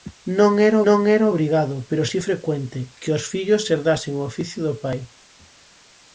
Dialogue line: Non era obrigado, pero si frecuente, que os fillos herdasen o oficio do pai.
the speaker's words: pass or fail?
fail